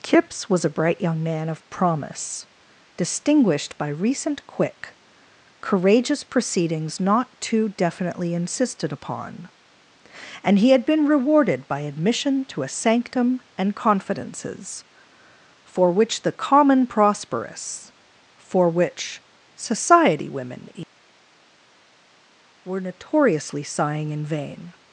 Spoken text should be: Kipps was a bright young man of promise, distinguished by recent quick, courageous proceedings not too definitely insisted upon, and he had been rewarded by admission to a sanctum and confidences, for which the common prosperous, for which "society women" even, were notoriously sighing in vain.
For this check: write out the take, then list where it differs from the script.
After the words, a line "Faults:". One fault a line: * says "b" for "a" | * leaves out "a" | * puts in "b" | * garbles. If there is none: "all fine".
Kipps was a bright young man of promise, distinguished by recent quick, courageous proceedings not too definitely insisted upon, and he had been rewarded by admission to a sanctum and confidences, for which the common prosperous, for which "society women" were notoriously sighing in vain.
Faults:
* leaves out "even"